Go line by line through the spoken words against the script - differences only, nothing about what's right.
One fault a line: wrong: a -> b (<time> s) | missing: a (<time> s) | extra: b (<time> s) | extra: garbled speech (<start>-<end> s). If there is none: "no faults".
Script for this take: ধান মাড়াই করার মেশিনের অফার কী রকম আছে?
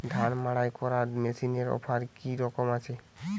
no faults